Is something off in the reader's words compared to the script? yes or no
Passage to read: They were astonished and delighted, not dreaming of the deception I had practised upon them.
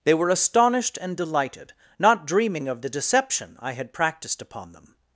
no